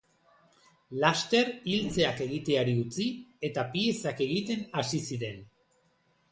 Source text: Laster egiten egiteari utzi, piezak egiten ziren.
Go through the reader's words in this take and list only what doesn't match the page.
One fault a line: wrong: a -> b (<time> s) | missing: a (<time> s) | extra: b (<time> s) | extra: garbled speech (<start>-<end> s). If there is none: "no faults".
wrong: egiten -> iltzeak (1.7 s)
extra: eta (3.5 s)
extra: hasi (4.8 s)